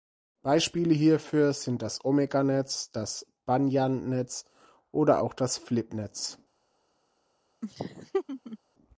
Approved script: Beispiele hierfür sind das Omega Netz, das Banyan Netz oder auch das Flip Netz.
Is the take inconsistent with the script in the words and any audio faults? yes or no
yes